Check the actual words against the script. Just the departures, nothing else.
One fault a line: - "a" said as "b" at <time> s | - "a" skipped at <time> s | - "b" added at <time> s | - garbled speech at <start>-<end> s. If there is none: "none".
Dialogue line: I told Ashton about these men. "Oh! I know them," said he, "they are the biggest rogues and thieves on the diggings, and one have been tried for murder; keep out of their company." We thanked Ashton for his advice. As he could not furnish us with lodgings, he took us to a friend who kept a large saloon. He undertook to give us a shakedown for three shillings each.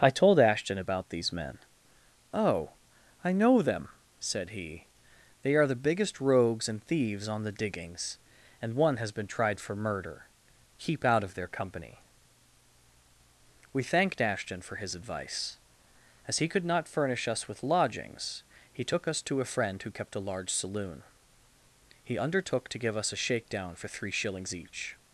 - "have" said as "has" at 9.0 s